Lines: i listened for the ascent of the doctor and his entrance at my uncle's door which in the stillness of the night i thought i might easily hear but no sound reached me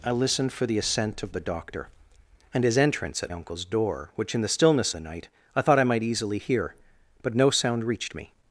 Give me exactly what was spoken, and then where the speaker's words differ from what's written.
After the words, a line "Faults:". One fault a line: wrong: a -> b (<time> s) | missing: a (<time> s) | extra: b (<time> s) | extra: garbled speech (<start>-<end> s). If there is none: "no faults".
i listened for the ascent of the doctor and his entrance at uncle's door which in the stillness the night i thought i might easily hear but no sound reached me
Faults:
missing: my (3.3 s)
missing: of (4.9 s)